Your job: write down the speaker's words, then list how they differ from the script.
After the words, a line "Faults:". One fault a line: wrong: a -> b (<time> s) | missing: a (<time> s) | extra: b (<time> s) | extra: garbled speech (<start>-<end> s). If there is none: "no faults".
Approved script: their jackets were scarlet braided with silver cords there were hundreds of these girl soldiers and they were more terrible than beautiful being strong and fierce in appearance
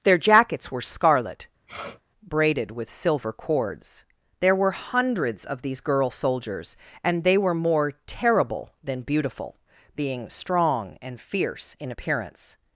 their jackets were scarlet braided with silver cords there were hundreds of these girl soldiers and they were more terrible than beautiful being strong and fierce in appearance
Faults:
no faults